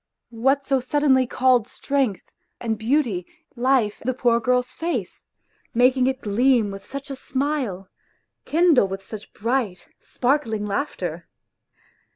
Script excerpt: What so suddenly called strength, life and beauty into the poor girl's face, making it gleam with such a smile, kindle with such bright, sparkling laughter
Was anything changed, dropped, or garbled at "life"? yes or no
yes